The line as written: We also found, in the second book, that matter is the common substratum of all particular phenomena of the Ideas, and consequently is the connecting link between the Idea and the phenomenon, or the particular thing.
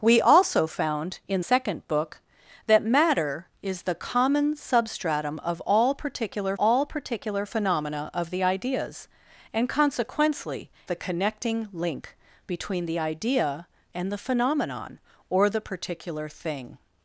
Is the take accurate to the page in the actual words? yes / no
no